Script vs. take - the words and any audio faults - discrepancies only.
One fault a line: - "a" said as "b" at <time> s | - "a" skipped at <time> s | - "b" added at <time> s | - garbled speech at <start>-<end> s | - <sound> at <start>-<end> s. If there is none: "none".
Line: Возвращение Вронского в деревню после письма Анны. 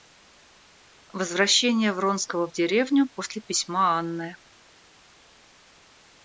none